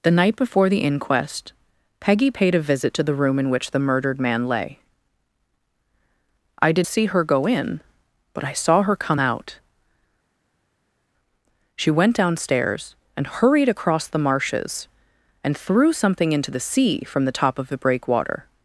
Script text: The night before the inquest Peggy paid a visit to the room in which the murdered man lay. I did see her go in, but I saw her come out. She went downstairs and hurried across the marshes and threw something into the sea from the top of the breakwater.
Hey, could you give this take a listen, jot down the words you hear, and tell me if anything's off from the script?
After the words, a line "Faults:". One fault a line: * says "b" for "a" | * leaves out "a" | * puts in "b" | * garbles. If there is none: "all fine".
The night before the inquest Peggy paid a visit to the room in which the murdered man lay. I did see her go in, but I saw her come out. She went downstairs and hurried across the marshes and threw something into the sea from the top of the breakwater.
Faults:
all fine